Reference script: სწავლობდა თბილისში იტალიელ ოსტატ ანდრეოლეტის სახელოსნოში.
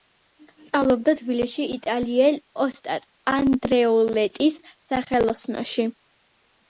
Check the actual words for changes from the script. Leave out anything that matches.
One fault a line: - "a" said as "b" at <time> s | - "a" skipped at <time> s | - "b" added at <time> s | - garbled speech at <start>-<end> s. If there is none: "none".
none